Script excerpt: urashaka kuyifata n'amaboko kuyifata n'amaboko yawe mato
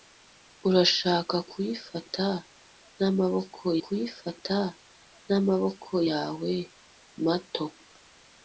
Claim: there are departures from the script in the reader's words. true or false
false